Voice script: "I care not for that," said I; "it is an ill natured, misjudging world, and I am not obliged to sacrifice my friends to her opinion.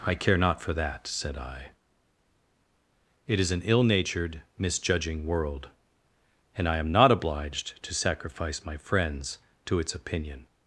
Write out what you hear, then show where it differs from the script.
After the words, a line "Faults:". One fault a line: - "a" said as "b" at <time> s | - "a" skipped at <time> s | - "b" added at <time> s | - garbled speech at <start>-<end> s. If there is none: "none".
"I care not for that," said I; "it is an ill natured, misjudging world, and I am not obliged to sacrifice my friends to its opinion.
Faults:
- "her" said as "its" at 9.8 s